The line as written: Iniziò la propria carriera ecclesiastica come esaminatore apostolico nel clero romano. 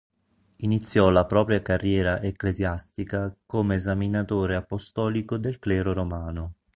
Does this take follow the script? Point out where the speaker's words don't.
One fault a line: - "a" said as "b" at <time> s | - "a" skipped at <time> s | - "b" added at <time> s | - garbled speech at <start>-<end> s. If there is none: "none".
- "nel" said as "del" at 5.4 s